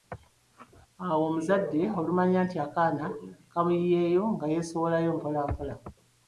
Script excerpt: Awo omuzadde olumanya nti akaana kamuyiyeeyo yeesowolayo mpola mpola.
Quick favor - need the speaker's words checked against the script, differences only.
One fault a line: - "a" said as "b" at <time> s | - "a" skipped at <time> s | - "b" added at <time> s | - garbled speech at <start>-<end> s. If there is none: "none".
- "nga" added at 4.3 s